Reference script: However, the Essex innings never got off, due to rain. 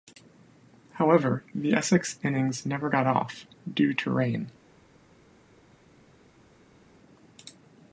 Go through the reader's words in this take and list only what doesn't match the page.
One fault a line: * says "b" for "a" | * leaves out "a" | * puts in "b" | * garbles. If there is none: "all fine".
all fine